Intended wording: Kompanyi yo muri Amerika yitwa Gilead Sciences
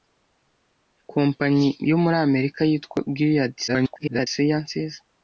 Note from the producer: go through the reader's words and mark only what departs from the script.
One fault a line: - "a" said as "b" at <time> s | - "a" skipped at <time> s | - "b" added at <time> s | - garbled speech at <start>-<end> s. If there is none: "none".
- garbled speech at 3.7-4.3 s